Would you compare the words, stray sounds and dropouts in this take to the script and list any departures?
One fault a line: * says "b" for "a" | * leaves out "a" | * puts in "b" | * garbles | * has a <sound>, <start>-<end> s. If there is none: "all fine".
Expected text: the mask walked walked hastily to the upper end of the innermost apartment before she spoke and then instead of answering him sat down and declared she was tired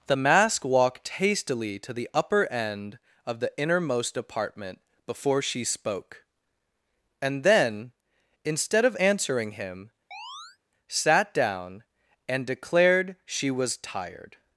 * leaves out "walked"
* has a chirp, 10.1-10.6 s